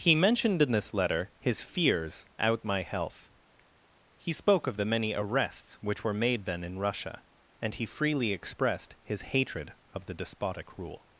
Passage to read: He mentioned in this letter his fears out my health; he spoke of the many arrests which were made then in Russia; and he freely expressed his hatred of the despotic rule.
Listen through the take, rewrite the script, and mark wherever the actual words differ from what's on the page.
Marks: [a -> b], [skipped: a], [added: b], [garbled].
He mentioned in this letter his fears out my health; he spoke of the many arrests which were made then in Russia; and he freely expressed his hatred of the despotic rule.